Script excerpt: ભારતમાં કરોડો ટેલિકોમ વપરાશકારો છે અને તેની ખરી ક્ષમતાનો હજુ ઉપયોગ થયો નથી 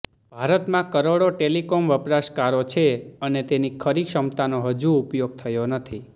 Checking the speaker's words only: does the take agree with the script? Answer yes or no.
yes